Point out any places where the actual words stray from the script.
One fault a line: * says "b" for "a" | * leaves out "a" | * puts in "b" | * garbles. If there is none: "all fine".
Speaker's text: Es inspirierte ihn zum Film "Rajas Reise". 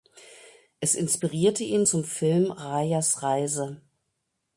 all fine